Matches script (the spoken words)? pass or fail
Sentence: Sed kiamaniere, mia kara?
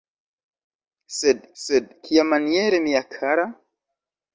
fail